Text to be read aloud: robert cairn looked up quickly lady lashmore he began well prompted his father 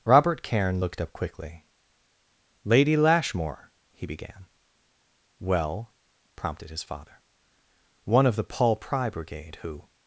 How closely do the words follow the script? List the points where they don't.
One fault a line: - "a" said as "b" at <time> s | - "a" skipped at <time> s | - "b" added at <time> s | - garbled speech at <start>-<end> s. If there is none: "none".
- "one of the paul pry brigade who" added at 8.0 s